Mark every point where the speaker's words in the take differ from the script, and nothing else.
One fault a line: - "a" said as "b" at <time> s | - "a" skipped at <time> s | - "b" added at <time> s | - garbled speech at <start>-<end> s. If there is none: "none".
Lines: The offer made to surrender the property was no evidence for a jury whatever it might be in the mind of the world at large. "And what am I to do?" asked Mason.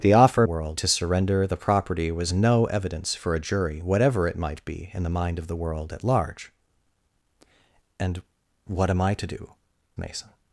- "made" said as "world" at 0.4 s
- "asked" skipped at 9.5 s